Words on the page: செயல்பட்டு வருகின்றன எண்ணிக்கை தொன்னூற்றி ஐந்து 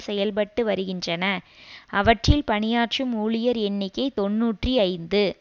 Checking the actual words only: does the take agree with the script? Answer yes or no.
no